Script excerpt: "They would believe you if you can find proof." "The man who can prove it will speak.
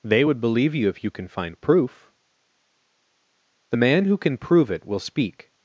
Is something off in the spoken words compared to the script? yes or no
no